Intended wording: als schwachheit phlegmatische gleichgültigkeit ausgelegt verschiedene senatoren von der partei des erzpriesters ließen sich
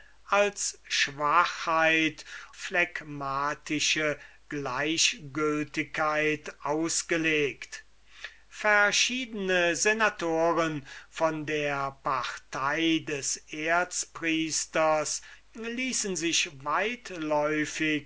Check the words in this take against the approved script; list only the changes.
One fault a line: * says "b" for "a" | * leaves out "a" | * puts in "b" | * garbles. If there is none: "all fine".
all fine